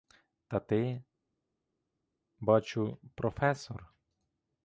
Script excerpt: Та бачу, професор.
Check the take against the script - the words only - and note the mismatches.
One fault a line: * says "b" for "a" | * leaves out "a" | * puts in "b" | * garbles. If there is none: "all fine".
* puts in "ти"